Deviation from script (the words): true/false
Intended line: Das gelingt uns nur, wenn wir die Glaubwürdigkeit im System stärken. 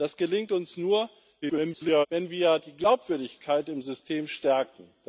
true